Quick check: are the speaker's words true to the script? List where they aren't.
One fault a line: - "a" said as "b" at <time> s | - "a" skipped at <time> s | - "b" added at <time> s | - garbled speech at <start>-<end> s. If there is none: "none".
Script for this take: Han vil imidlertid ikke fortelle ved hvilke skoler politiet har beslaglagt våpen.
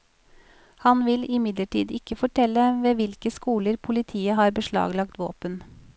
none